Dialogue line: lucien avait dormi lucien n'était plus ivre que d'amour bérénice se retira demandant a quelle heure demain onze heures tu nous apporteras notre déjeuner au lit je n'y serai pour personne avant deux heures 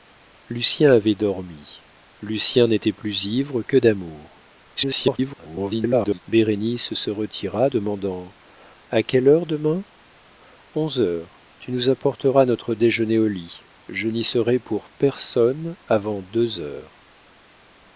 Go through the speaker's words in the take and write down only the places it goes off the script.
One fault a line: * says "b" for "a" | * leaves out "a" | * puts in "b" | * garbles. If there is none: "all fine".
* garbles